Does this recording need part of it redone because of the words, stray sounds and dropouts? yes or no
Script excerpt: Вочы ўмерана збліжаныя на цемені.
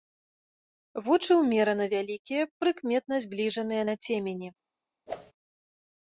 yes